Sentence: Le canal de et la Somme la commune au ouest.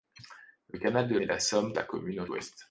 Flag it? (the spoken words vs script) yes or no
no